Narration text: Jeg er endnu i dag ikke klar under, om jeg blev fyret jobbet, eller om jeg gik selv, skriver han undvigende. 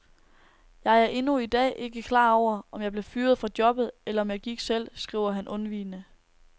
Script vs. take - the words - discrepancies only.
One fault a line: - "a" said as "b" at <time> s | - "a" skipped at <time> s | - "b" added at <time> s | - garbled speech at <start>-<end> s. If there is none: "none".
- "under" said as "over" at 2.3 s
- "fra" added at 3.4 s